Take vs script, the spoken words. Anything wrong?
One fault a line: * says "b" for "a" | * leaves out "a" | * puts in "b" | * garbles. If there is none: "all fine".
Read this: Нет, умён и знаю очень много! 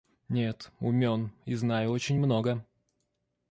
all fine